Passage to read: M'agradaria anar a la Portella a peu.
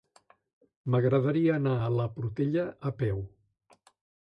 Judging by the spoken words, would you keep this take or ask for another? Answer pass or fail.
pass